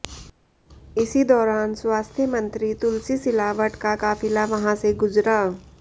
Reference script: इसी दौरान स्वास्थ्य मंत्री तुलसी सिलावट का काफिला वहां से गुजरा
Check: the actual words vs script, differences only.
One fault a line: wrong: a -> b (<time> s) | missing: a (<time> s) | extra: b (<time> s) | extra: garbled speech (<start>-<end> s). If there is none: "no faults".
no faults